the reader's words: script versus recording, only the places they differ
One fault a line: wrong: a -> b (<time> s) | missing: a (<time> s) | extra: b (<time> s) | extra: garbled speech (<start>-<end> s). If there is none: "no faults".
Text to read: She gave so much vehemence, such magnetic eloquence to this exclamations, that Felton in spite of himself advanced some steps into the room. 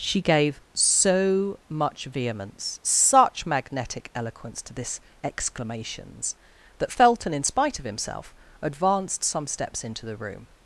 no faults